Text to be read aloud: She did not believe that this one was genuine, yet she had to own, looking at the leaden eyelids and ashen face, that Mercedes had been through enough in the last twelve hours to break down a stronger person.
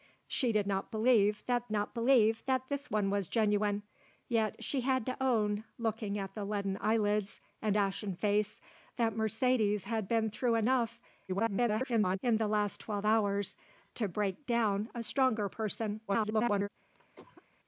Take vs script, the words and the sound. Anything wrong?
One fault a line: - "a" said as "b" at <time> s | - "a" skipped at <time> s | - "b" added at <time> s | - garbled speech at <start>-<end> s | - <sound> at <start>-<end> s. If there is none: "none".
- "not believe that" added at 1.7 s
- garbled speech at 11.3-12.2 s
- garbled speech at 16.1-16.7 s
- cough at 16.9-17.4 s